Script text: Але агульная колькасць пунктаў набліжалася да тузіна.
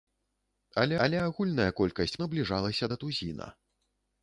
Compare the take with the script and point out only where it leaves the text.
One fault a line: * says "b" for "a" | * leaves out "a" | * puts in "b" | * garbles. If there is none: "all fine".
* puts in "але"
* leaves out "пунктаў"